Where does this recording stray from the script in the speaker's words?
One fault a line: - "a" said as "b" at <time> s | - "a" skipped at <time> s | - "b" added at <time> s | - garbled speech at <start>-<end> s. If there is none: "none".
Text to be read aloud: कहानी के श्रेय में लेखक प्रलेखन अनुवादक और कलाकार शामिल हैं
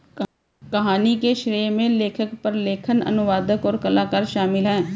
none